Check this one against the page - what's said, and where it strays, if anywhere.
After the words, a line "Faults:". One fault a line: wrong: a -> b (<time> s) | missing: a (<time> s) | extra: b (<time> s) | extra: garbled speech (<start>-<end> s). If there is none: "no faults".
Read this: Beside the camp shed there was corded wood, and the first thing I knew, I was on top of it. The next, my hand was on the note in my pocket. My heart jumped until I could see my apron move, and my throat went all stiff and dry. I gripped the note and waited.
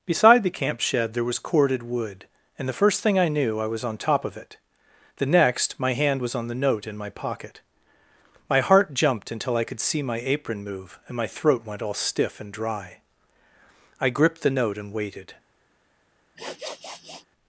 Beside the camp shed there was corded wood, and the first thing I knew, I was on top of it. The next, my hand was on the note in my pocket. My heart jumped until I could see my apron move, and my throat went all stiff and dry. I gripped the note and waited.
Faults:
no faults